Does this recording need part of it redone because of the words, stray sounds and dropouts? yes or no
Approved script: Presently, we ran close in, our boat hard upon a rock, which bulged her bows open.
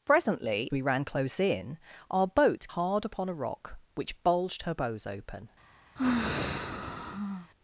yes